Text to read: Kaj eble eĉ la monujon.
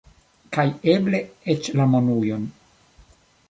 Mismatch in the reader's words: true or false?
false